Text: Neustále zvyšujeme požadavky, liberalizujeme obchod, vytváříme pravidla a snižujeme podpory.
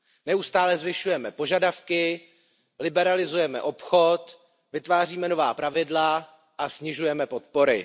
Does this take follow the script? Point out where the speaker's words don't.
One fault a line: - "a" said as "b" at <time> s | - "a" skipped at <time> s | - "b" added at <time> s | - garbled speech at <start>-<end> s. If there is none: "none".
- "nová" added at 5.3 s